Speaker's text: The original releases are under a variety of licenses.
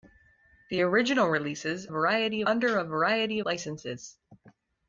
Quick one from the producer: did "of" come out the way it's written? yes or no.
no